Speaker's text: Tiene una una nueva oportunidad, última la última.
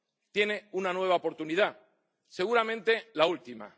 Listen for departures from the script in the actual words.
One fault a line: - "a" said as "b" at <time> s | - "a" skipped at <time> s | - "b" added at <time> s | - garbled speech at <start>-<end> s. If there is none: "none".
- "una" skipped at 0.9 s
- "última" said as "seguramente" at 2.3 s